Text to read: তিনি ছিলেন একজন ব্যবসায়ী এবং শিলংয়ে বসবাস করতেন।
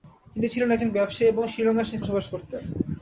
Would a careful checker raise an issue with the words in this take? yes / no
no